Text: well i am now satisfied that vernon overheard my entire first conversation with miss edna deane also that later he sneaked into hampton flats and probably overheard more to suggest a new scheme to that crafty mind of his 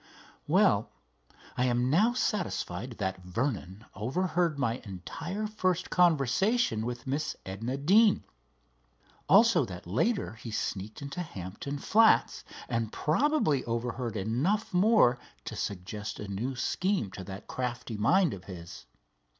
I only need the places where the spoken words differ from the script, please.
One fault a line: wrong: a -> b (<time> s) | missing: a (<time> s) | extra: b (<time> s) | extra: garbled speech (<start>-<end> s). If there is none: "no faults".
extra: enough (14.2 s)